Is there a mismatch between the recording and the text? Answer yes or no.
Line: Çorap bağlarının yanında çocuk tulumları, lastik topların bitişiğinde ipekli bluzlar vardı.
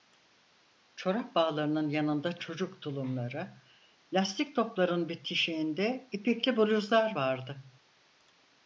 no